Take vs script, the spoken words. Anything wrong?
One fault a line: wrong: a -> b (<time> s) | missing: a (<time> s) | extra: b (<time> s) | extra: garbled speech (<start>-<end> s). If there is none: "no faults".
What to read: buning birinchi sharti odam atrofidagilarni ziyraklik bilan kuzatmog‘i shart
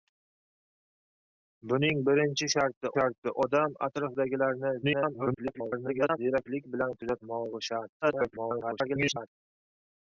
extra: sharti (3.0 s)
extra: garbled speech (4.8-6.2 s)
extra: garbled speech (8.0-9.3 s)